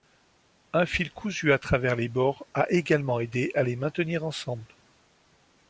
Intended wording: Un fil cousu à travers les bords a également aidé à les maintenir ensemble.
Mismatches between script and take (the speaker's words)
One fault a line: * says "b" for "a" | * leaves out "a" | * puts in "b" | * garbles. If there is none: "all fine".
all fine